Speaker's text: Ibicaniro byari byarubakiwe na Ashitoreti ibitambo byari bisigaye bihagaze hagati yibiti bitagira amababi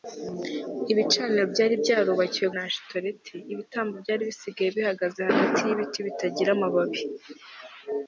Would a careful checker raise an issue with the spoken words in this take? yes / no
no